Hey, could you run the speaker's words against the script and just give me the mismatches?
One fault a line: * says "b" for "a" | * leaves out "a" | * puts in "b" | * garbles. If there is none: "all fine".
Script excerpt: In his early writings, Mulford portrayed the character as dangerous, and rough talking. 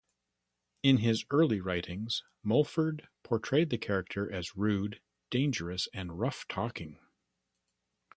* puts in "rude"